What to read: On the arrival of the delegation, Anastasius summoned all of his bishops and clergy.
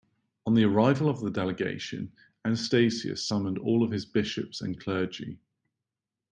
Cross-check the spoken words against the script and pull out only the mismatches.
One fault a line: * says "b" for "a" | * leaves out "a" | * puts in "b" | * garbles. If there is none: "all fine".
all fine